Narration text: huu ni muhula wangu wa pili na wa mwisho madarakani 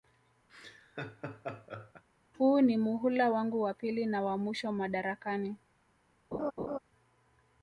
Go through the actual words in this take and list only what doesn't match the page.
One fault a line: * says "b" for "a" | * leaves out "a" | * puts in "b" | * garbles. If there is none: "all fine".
all fine